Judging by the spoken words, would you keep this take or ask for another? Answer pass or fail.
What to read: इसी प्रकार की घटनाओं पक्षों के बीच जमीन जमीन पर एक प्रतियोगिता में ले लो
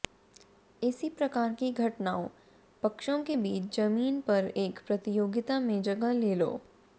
fail